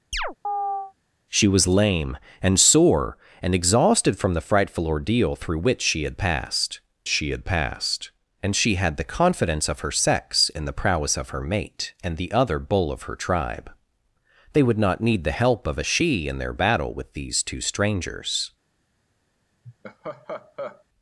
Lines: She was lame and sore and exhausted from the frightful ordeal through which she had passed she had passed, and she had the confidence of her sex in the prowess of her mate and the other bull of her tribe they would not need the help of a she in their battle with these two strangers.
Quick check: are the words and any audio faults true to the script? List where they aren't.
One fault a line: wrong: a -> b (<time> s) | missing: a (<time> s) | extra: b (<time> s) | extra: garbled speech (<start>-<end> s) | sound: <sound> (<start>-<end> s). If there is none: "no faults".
sound: chirp (0.1-0.9 s)
sound: laugh (19.6-20.8 s)